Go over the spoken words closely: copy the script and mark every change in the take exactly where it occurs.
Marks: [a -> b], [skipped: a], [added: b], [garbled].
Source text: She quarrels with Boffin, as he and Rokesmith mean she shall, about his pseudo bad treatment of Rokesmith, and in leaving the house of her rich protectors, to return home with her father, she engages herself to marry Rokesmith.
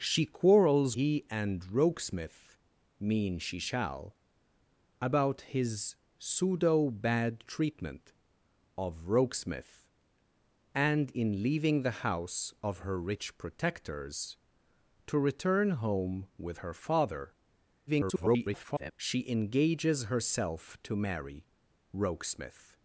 She quarrels [skipped: with Boffin, as] he and Rokesmith mean she shall, about his pseudo bad treatment of Rokesmith, and in leaving the house of her rich protectors, to return home with her father, [garbled] she engages herself to marry Rokesmith.